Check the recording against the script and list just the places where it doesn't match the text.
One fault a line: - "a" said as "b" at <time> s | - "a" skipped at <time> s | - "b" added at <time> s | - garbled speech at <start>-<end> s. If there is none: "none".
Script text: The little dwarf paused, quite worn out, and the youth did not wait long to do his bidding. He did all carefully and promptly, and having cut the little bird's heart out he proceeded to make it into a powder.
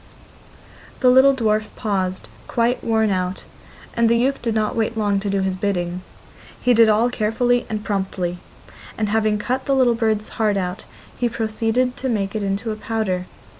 none